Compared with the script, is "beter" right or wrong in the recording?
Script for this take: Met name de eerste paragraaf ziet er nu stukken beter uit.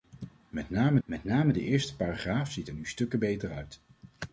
right